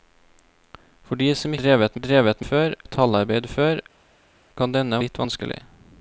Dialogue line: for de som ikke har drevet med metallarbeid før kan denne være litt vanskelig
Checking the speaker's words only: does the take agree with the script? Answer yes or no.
no